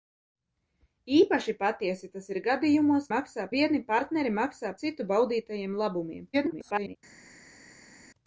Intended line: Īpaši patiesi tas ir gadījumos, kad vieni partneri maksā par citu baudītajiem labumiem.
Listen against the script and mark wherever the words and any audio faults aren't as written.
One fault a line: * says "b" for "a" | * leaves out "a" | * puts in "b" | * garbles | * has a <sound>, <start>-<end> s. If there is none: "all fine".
* says "maksā" for "kad"
* leaves out "par"
* garbles